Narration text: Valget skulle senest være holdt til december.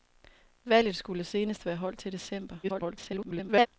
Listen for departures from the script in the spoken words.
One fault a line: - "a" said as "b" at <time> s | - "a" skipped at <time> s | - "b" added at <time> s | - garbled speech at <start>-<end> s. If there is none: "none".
- garbled speech at 2.6-3.7 s